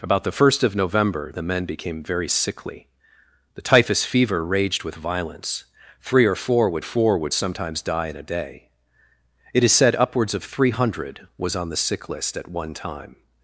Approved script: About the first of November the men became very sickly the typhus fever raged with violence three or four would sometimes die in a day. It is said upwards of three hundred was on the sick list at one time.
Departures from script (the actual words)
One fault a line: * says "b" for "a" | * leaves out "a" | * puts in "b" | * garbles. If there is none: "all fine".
* puts in "four would"